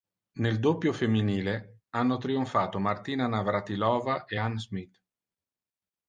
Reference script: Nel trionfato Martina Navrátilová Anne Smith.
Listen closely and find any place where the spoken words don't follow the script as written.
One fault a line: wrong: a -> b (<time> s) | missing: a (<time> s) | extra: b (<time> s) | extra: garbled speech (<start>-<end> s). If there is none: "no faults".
extra: doppio femminile hanno (0.6 s)
extra: e (4.2 s)